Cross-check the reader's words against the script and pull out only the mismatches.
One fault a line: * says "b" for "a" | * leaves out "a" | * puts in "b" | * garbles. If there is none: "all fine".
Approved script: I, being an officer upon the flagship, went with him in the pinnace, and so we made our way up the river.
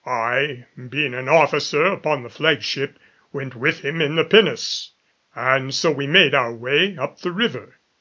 all fine